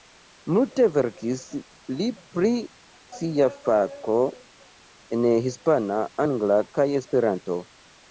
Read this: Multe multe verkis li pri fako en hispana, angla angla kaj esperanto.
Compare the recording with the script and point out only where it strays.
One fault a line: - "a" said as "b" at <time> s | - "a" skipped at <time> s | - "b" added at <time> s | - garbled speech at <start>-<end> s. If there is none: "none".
- "multe" skipped at 0.8 s
- "sia" added at 3.2 s
- "angla" skipped at 6.6 s